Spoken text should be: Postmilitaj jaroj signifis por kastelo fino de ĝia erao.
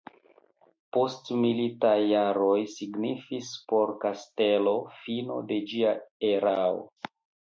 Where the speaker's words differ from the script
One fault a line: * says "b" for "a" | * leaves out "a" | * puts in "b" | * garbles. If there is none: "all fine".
all fine